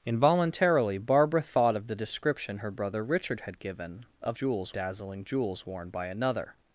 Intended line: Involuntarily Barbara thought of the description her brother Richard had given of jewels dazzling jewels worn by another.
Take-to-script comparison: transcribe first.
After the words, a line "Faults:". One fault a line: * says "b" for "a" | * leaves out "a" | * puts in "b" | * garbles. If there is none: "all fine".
Involuntarily Barbara thought of the description her brother Richard had given of jewels dazzling jewels worn by another.
Faults:
all fine